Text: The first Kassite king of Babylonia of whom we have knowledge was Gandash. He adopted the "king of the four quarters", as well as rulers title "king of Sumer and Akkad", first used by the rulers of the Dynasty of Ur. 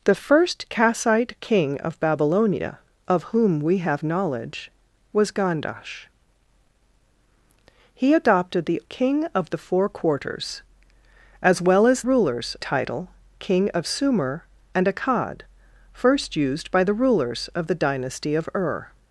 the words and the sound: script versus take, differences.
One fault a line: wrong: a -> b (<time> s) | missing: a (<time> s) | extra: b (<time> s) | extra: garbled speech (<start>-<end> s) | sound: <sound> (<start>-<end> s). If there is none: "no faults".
no faults